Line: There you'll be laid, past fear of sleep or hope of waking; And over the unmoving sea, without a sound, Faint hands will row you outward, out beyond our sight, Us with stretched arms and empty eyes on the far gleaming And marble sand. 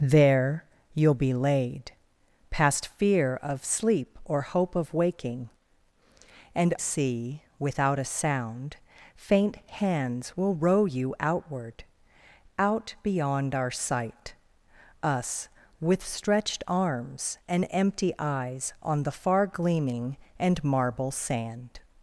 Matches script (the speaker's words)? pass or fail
fail